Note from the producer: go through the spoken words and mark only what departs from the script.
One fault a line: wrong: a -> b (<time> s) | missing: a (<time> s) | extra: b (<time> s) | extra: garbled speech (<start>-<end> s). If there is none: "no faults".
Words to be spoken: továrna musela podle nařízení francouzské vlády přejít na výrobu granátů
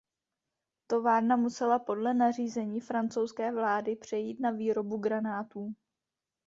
no faults